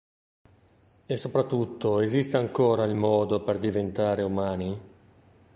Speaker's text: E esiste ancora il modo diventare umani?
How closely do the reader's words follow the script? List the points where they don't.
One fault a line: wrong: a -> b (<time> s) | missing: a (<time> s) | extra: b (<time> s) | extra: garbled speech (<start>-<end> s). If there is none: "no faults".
extra: soprattutto (1.1 s)
extra: per (3.4 s)